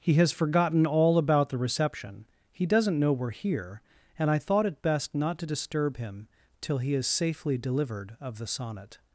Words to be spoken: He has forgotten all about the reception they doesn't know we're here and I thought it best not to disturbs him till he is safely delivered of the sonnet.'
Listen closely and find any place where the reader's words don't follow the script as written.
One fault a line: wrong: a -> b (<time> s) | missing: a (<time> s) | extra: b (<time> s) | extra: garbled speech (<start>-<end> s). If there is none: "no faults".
wrong: they -> he (2.5 s)
wrong: disturbs -> disturb (5.4 s)